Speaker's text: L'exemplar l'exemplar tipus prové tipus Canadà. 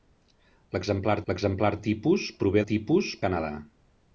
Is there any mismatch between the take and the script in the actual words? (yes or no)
no